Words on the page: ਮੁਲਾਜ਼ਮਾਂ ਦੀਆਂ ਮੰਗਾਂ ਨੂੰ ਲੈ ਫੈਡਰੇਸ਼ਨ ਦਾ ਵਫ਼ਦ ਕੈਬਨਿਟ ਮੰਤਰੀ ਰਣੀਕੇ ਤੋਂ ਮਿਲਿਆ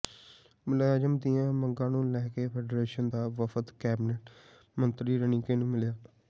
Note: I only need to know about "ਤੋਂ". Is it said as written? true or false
false